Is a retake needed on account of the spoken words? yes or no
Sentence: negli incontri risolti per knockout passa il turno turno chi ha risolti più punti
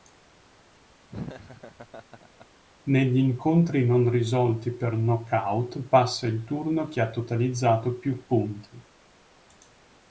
yes